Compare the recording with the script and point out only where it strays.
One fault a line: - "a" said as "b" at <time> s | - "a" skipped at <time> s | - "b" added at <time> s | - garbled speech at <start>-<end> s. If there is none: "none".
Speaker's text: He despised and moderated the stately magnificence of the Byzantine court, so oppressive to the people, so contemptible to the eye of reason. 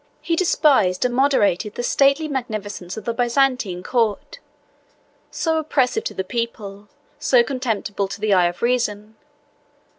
none